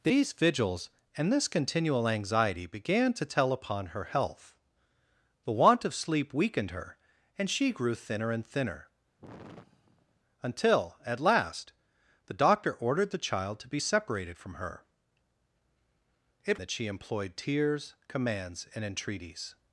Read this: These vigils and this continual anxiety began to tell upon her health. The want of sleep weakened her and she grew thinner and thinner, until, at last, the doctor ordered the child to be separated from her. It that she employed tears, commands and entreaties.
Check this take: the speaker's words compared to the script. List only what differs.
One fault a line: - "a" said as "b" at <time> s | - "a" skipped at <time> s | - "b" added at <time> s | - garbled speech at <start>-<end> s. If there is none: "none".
none